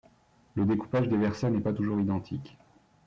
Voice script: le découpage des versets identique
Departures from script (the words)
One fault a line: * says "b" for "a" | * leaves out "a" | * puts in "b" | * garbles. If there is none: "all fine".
* puts in "n'est pas toujours"